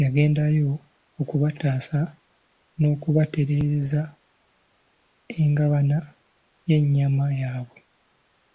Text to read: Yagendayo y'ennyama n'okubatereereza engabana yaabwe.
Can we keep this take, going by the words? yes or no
no